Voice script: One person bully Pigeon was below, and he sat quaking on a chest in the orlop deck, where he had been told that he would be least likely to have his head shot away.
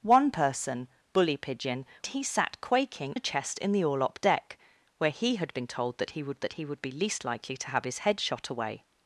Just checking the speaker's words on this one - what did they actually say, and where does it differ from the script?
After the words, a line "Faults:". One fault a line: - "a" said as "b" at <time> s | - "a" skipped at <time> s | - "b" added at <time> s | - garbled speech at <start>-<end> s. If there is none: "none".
One person bully Pigeon he sat quaking a chest in the orlop deck, where he had been told that he would that he would be least likely to have his head shot away.
Faults:
- "was below and" skipped at 1.9 s
- "on" skipped at 3.1 s
- "that he would" added at 6.4 s